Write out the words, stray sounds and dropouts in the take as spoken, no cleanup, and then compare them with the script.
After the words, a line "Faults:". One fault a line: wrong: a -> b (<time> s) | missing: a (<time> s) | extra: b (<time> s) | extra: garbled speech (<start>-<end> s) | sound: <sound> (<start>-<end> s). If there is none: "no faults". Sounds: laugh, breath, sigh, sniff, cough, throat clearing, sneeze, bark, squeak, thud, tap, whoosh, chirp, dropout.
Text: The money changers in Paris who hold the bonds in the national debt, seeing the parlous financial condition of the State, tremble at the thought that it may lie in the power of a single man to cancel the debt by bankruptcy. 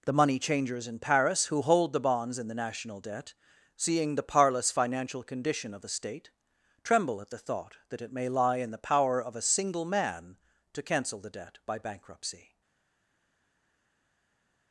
The money changers in Paris who hold the bonds in the national debt, seeing the parlous financial condition of the State, tremble at the thought that it may lie in the power of a single man to cancel the debt by bankruptcy.
Faults:
no faults